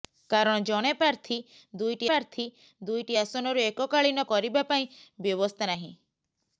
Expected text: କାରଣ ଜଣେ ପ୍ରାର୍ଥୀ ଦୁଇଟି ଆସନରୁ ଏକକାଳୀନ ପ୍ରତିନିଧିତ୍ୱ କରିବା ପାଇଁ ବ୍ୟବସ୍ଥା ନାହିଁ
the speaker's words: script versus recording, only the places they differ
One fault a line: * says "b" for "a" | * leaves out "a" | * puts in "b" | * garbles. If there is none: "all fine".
* puts in "ପ୍ରାର୍ଥୀ ଦୁଇଟି"
* leaves out "ପ୍ରତିନିଧିତ୍ୱ"